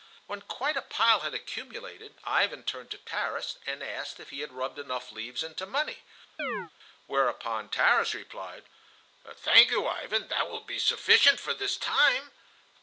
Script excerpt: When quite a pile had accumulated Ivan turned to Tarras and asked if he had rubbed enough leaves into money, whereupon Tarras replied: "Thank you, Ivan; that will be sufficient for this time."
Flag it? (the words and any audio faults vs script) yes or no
yes